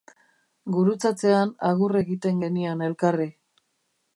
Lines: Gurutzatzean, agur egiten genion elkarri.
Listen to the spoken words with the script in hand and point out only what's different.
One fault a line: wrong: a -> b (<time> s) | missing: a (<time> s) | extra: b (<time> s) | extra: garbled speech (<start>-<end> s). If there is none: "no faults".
no faults